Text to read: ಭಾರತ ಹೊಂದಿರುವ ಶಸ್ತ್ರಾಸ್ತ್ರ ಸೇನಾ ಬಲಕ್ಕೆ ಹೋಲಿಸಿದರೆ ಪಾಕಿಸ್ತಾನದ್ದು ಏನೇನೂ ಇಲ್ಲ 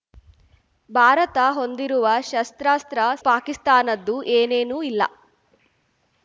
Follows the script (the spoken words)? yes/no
no